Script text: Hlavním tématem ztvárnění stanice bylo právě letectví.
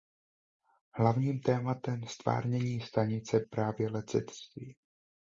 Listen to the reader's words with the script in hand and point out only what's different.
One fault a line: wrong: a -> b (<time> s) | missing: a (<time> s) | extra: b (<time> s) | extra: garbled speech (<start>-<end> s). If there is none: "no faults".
missing: bylo (3.4 s)